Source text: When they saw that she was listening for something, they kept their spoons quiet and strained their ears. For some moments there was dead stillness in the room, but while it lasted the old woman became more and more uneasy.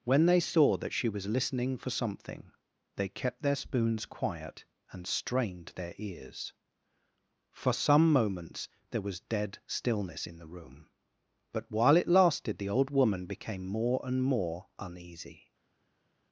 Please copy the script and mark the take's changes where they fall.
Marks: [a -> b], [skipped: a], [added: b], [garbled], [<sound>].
When they saw that she was listening for something, they kept their spoons quiet and strained their ears. For some moments there was dead stillness in the room, but while it lasted the old woman became more and more uneasy.